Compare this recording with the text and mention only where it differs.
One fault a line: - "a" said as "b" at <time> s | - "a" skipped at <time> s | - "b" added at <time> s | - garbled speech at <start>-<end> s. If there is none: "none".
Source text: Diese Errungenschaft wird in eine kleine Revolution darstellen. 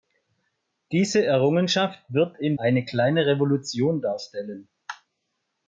none